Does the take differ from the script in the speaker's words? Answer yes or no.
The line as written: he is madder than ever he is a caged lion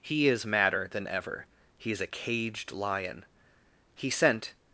yes